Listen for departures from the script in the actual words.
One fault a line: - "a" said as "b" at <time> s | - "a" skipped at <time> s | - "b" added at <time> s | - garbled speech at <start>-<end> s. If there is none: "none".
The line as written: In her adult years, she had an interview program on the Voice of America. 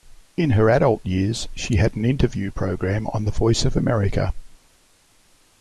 none